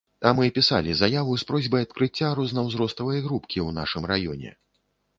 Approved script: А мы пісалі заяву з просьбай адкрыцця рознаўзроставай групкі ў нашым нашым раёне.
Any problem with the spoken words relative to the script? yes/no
yes